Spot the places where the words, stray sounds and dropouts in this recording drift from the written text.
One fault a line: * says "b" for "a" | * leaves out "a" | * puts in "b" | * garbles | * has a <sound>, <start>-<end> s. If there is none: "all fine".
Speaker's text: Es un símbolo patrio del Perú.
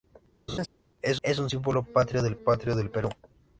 * has a laugh, 0.5-0.7 s
* puts in "es"
* puts in "patrio del"